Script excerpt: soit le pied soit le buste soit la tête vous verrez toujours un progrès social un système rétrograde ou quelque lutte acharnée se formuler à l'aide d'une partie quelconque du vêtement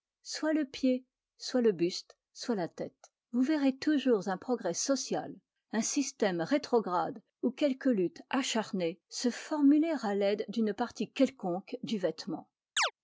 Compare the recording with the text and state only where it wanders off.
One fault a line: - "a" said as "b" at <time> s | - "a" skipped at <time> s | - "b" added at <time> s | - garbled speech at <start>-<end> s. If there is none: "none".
none